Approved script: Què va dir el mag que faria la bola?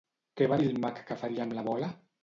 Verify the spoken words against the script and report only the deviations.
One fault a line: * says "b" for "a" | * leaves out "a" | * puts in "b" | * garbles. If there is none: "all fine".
* puts in "amb"